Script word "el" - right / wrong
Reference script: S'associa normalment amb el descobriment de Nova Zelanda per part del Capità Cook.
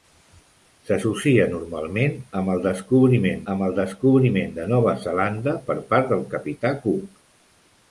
right